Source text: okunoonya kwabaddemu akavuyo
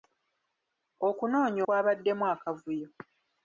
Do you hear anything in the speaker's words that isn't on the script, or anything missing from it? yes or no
no